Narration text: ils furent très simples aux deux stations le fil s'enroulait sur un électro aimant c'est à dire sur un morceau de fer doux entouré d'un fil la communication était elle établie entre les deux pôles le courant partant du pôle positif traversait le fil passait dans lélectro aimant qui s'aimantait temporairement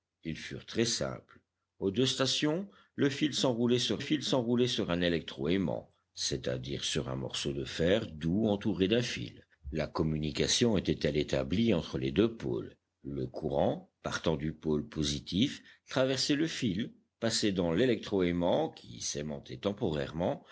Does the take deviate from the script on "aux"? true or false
false